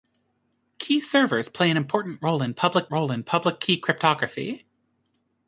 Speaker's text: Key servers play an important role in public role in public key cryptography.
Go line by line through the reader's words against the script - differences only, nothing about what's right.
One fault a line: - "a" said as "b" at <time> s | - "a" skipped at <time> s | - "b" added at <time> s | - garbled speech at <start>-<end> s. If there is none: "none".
none